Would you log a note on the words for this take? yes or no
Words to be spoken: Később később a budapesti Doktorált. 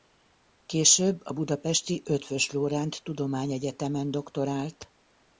yes